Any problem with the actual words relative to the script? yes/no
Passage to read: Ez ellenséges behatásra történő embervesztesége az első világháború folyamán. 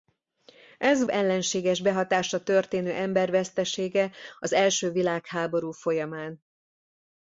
no